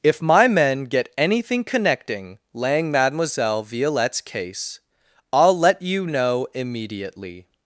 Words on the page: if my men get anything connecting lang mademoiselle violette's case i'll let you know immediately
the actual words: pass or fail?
pass